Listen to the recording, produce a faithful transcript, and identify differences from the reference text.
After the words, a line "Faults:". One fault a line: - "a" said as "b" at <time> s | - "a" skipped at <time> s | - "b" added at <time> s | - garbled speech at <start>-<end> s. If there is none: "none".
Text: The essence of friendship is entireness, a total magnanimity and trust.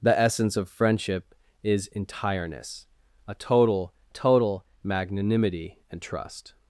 The essence of friendship is entireness, a total total magnanimity and trust.
Faults:
- "total" added at 4.1 s